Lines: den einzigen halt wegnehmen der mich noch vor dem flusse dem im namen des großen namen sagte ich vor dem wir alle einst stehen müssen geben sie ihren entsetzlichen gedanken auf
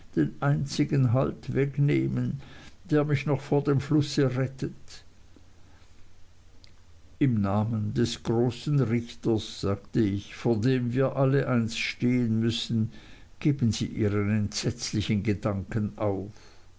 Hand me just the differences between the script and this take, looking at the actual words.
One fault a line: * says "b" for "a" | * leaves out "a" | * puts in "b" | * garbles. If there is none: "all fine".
* says "rettet" for "dem"
* says "richters" for "namen"